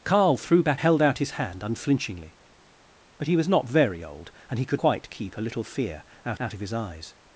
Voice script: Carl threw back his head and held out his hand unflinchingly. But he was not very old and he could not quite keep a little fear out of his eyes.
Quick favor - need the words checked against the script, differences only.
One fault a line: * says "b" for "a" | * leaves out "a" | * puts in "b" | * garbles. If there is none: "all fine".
* leaves out "his head and"
* leaves out "not"
* puts in "out"